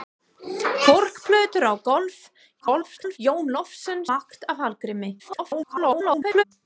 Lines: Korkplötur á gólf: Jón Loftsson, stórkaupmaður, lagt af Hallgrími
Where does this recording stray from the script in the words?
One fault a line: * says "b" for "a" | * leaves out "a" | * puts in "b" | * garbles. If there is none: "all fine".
* garbles
* leaves out "stórkaupmaður"
* garbles